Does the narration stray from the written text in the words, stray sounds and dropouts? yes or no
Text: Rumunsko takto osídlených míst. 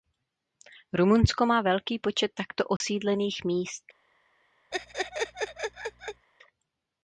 yes